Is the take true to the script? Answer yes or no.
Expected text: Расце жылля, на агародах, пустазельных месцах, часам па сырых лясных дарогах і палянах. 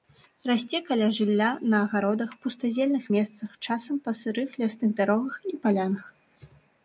no